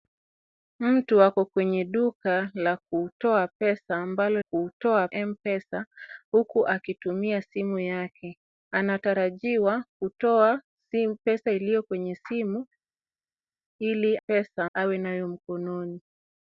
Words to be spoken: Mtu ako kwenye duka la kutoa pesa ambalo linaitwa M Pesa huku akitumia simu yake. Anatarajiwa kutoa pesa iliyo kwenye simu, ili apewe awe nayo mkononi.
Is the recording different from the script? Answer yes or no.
yes